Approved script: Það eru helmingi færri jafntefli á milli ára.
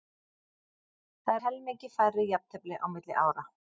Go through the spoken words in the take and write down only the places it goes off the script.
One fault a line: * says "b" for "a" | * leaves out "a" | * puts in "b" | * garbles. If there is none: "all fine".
* leaves out "eru"